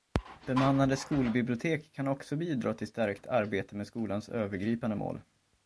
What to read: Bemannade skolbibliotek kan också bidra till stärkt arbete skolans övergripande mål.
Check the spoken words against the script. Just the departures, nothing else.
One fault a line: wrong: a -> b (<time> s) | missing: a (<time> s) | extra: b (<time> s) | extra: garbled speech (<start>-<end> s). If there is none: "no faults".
extra: med (3.8 s)